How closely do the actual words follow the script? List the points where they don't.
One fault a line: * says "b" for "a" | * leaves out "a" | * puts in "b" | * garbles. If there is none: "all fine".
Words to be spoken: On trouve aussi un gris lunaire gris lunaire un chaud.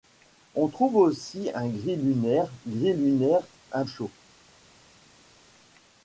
all fine